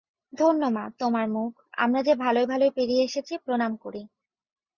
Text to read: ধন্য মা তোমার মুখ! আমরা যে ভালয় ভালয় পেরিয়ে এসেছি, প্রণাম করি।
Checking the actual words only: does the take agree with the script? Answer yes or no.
yes